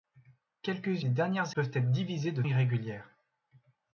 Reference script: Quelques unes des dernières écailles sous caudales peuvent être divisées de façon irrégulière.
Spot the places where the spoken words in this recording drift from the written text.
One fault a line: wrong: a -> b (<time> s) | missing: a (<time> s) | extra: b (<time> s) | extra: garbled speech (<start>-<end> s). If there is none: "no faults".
missing: unes (1.1 s)
missing: écailles sous caudales (1.6 s)
missing: façon (2.4 s)